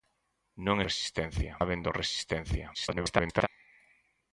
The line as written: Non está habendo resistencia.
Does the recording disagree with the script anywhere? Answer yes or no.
yes